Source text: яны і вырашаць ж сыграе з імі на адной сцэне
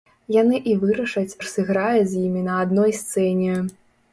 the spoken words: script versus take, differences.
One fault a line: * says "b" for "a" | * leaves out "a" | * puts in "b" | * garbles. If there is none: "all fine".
all fine